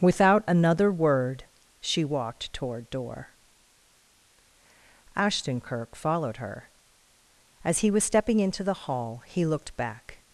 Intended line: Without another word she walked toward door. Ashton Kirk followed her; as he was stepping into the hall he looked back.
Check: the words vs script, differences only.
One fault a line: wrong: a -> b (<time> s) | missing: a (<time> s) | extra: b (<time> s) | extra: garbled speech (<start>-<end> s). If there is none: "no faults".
no faults